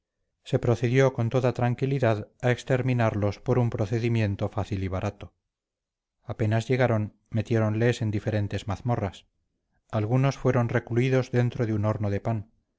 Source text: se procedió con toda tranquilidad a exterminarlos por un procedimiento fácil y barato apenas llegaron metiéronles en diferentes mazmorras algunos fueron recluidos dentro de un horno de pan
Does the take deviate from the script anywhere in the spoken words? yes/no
no